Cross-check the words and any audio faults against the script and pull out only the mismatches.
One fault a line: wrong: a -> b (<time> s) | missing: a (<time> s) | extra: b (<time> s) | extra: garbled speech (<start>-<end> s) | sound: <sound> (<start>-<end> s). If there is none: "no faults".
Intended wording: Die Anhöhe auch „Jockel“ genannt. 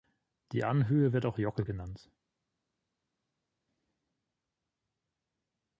extra: wird (1.1 s)